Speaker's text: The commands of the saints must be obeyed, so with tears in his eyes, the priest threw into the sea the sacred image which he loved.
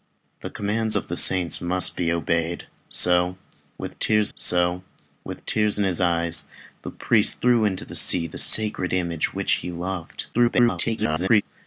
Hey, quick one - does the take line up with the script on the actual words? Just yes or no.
no